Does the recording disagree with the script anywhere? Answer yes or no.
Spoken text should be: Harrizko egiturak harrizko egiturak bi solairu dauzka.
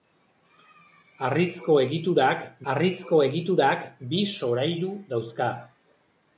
no